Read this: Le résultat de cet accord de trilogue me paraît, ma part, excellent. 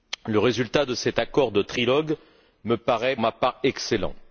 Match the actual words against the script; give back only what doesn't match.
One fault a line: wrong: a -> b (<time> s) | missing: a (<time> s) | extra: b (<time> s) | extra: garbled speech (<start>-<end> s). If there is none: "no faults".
no faults